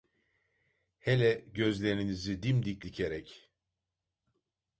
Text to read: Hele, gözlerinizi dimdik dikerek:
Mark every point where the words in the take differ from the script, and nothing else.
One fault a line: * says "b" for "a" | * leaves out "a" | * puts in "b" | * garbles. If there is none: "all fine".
all fine